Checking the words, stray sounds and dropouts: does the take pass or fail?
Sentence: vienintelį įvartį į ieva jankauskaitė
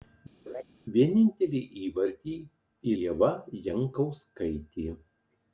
fail